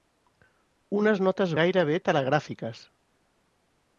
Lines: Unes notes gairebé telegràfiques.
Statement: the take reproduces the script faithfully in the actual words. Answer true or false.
true